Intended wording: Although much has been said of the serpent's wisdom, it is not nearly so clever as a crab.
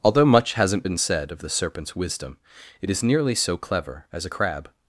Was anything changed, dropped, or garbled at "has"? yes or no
yes